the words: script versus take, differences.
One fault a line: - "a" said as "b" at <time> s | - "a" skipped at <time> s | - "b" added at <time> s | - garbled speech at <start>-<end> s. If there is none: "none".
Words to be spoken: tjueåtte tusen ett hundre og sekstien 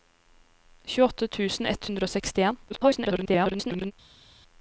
- garbled speech at 2.7-3.9 s